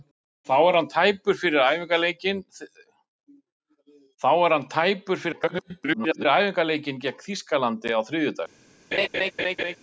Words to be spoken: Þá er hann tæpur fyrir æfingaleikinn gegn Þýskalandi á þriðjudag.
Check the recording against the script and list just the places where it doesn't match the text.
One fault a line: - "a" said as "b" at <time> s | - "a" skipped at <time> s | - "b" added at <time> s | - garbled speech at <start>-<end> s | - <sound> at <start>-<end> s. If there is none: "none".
- garbled speech at 5.3-6.3 s
- laugh at 8.9-9.8 s